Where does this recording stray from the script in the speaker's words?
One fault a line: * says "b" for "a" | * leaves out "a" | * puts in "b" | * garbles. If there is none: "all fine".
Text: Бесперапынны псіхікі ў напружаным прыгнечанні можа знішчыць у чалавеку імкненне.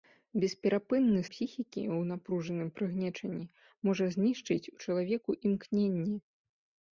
all fine